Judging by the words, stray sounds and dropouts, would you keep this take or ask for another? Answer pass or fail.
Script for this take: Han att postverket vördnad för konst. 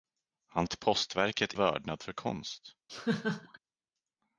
fail